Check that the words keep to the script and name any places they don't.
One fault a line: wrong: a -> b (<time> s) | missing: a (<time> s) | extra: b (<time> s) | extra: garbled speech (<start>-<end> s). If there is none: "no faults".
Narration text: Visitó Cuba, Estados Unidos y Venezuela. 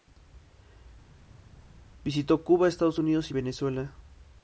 no faults